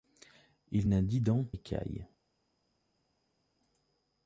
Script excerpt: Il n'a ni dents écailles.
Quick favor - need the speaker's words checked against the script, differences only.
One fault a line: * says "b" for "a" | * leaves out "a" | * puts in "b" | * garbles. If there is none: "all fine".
all fine